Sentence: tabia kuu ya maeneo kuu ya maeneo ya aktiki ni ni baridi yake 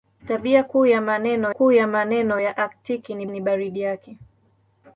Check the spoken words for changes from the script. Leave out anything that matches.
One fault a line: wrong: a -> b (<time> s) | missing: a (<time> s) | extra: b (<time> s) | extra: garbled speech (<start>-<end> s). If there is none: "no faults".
no faults